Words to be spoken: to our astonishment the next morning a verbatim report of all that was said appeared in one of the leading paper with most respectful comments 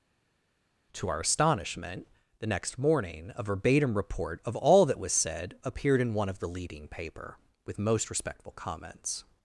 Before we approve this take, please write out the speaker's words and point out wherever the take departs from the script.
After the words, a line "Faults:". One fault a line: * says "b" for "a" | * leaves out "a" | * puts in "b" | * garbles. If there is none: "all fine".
to our astonishment the next morning a verbatim report of all that was said appeared in one of the leading paper with most respectful comments
Faults:
all fine